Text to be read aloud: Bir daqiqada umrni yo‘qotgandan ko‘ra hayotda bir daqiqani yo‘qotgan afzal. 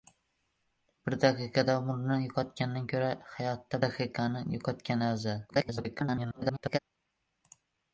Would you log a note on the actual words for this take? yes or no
yes